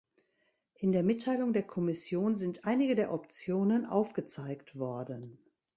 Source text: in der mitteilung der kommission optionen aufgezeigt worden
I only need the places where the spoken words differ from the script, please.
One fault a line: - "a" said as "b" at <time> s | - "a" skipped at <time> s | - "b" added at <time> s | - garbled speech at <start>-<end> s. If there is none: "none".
- "sind einige der" added at 2.4 s